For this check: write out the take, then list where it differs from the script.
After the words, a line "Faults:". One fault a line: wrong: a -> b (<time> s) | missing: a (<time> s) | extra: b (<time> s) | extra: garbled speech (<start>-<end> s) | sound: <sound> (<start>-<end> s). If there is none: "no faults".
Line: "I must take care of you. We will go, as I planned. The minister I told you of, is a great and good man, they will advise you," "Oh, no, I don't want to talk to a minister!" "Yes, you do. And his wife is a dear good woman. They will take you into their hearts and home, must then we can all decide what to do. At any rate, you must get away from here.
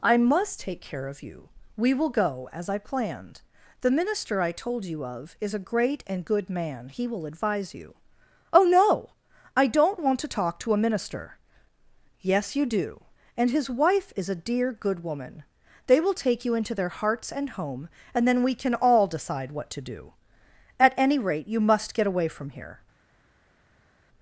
"I must take care of you. We will go, as I planned. The minister I told you of, is a great and good man, he will advise you," "Oh, no, I don't want to talk to a minister!" "Yes, you do. And his wife is a dear good woman. They will take you into their hearts and home, and then we can all decide what to do. At any rate, you must get away from here.
Faults:
wrong: they -> he (6.9 s)
wrong: must -> and (18.1 s)